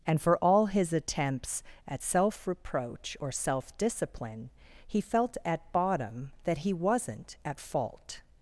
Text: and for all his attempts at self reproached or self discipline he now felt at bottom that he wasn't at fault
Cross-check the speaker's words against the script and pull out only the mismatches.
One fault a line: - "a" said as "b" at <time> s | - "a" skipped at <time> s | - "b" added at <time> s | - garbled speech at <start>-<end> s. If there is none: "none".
- "reproached" said as "reproach" at 2.5 s
- "now" skipped at 5.0 s